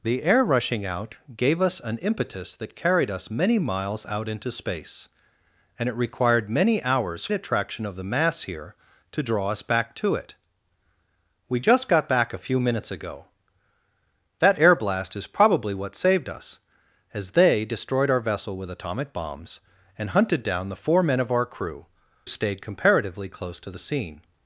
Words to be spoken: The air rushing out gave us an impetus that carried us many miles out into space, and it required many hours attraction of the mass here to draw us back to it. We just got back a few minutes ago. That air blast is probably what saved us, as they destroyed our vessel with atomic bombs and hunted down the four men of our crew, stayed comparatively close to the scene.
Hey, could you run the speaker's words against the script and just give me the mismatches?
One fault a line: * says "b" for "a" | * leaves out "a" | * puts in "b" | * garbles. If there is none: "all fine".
all fine